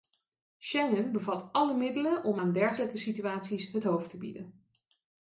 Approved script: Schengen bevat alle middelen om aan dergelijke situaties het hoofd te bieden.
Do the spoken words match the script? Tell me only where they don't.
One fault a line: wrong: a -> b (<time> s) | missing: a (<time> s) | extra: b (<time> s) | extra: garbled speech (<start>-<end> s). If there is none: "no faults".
no faults